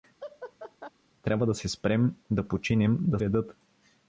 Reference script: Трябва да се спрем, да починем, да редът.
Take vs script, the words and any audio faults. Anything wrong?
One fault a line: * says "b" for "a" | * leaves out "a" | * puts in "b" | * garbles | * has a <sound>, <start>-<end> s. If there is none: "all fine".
* has a laugh, 0.2-0.9 s